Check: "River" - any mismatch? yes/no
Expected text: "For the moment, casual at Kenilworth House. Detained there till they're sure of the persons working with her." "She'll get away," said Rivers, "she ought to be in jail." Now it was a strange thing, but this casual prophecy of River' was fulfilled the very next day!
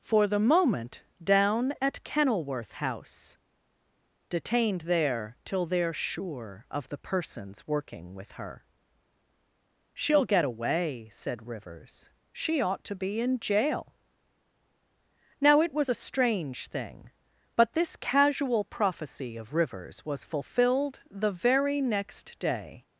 yes